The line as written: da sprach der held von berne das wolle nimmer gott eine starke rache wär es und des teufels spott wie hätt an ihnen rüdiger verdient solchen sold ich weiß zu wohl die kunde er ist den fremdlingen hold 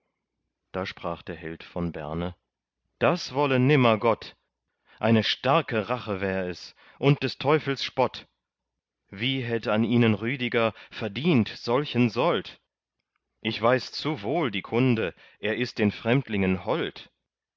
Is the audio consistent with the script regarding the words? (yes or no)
yes